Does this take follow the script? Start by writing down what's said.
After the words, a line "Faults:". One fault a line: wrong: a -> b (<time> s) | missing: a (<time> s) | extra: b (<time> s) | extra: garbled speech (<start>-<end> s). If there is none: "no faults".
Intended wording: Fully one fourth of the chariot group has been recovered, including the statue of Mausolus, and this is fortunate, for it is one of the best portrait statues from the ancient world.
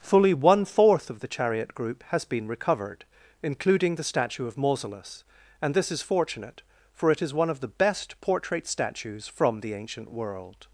Fully one fourth of the chariot group has been recovered, including the statue of Mausolus, and this is fortunate, for it is one of the best portrait statues from the ancient world.
Faults:
no faults